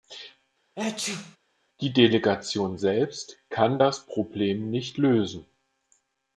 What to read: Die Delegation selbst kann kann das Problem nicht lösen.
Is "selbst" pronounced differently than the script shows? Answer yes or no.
no